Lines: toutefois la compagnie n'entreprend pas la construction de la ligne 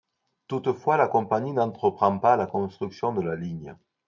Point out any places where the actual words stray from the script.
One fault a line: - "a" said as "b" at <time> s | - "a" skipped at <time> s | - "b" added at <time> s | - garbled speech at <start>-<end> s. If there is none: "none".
none